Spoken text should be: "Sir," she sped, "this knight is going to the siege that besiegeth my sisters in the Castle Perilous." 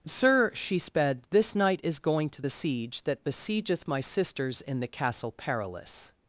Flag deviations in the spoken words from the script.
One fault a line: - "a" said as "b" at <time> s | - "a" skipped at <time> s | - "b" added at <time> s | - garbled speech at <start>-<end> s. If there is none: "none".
none